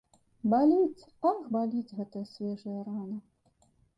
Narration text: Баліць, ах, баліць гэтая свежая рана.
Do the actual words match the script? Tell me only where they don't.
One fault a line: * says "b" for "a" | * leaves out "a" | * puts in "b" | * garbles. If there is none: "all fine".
all fine